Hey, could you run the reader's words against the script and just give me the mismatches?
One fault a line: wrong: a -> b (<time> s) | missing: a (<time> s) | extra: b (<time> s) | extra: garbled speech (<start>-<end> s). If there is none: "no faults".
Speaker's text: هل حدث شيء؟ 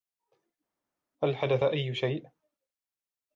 extra: أي (1.6 s)